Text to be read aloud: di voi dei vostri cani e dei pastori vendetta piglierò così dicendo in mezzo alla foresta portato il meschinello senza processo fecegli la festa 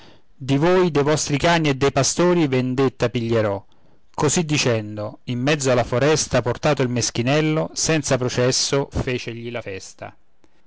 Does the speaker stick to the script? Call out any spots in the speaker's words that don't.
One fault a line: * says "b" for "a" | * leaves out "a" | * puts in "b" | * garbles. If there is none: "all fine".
all fine